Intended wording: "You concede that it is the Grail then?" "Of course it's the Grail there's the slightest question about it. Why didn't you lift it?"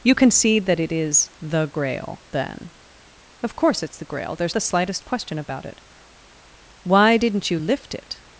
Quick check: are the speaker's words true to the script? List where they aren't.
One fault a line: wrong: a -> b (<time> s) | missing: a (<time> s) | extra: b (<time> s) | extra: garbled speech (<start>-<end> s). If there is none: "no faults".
no faults